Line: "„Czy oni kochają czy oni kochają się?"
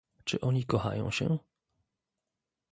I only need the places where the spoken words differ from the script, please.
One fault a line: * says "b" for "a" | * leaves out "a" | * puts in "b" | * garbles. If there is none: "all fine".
* leaves out "czy oni kochają"